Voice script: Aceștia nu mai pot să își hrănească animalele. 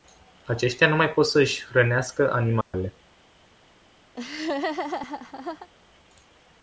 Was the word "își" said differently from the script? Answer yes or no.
no